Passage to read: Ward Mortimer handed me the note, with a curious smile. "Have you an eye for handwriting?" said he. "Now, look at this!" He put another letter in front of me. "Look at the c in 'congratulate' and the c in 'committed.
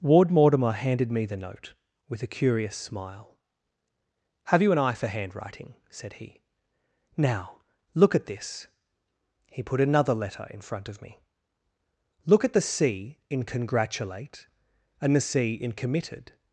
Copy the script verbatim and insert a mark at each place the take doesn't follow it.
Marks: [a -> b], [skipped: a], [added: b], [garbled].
Ward Mortimer handed me the note, with a curious smile. "Have you an eye for handwriting?" said he. "Now, look at this!" He put another letter in front of me. "Look at the c in 'congratulate' and the c in 'committed.